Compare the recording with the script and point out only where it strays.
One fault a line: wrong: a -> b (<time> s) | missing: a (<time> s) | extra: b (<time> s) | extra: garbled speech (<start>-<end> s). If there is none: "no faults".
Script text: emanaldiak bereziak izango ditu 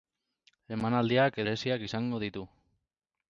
no faults